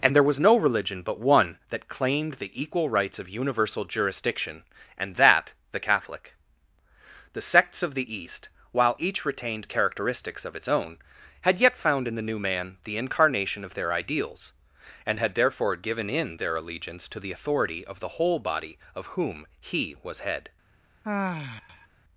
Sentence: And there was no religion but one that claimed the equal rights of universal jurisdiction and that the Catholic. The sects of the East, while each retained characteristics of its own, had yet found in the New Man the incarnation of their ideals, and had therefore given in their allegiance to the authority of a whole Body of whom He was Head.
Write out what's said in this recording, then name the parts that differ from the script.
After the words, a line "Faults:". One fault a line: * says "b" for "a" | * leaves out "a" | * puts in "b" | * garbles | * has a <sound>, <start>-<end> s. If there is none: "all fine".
And there was no religion but one that claimed the equal rights of universal jurisdiction and that the Catholic. The sects of the East, while each retained characteristics of its own, had yet found in the New Man the incarnation of their ideals, and had therefore given in their allegiance to the authority of the whole Body of whom He was Head.
Faults:
* says "the" for "a"
* has a sigh, 21.0-21.9 s